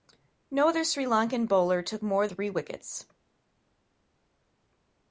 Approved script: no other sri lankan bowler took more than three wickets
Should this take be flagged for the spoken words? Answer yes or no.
yes